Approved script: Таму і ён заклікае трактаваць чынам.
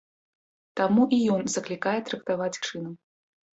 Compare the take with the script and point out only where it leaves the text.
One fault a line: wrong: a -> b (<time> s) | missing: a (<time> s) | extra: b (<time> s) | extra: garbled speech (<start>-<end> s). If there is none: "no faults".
no faults